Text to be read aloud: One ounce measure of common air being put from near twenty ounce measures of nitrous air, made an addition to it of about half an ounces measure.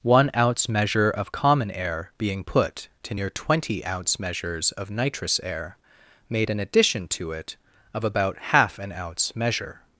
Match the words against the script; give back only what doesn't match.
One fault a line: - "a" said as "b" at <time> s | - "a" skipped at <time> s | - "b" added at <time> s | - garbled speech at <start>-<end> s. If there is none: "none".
- "from" said as "to" at 3.0 s
- "ounces" said as "ounce" at 8.9 s